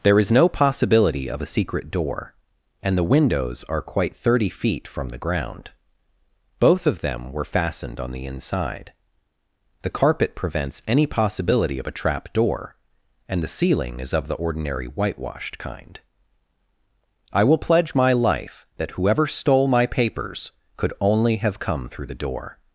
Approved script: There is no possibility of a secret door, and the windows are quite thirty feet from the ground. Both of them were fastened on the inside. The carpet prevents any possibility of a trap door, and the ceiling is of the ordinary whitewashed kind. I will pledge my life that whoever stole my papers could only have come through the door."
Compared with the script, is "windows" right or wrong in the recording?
right